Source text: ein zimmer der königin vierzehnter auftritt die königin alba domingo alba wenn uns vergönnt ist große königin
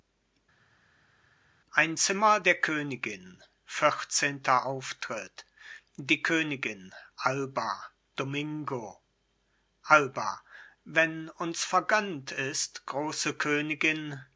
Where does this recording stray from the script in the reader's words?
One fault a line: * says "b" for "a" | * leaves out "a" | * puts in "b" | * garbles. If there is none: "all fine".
all fine